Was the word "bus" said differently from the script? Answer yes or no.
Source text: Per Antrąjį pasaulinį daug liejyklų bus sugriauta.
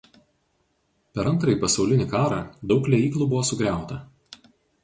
yes